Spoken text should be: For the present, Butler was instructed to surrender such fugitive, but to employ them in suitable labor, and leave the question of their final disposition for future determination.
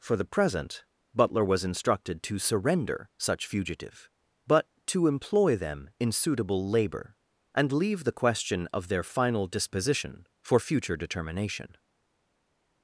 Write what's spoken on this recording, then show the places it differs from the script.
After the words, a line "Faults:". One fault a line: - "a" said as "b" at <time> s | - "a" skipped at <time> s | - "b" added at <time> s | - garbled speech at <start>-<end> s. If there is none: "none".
For the present, Butler was instructed to surrender such fugitive, but to employ them in suitable labor, and leave the question of their final disposition for future determination.
Faults:
none